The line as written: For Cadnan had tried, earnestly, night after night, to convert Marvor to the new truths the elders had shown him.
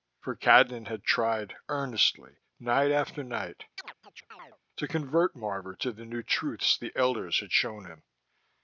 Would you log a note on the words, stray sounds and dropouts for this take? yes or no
yes